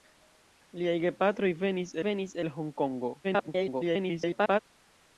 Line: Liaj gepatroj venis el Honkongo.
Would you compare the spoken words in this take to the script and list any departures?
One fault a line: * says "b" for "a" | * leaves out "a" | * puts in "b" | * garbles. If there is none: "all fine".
* puts in "venis"
* garbles